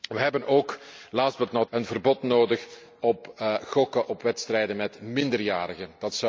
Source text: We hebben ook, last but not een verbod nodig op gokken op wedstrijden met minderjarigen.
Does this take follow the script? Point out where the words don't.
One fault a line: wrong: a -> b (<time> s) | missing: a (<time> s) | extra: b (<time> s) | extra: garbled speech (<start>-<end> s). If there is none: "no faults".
no faults